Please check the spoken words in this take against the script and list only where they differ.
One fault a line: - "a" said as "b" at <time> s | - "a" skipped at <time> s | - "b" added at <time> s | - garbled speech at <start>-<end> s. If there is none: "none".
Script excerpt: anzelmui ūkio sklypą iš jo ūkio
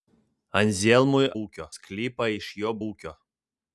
none